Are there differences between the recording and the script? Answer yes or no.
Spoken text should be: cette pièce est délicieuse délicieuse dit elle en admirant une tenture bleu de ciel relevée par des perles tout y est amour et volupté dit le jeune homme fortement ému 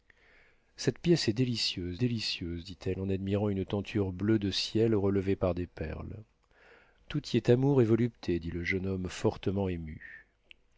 no